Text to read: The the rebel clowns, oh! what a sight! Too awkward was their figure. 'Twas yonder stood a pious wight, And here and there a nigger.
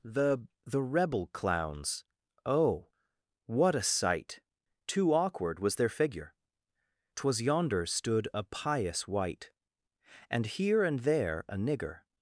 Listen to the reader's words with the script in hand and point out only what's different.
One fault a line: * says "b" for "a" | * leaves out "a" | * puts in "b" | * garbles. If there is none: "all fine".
all fine